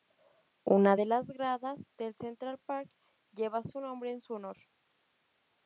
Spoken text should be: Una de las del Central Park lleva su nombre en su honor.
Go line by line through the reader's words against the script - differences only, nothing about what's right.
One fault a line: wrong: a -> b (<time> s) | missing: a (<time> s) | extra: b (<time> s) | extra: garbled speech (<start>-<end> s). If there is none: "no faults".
extra: gradas (1.3 s)